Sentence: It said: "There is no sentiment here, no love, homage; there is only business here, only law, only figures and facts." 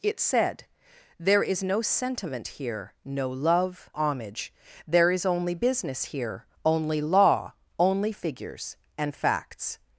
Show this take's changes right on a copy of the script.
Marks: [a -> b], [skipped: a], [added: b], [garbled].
It said: "There is no sentiment here, no love, homage; there is only business here, only law, only figures and facts."